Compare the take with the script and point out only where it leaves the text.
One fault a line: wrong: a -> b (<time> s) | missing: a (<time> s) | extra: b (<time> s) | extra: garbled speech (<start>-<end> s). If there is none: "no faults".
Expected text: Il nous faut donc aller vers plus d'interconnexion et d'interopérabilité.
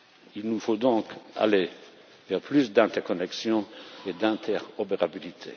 no faults